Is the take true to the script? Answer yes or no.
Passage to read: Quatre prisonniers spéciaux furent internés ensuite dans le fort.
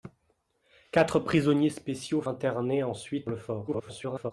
no